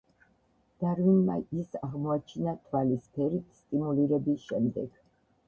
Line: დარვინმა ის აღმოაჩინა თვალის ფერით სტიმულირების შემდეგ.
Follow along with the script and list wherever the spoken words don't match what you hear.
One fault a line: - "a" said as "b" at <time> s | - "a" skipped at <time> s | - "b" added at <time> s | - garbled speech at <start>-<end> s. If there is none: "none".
none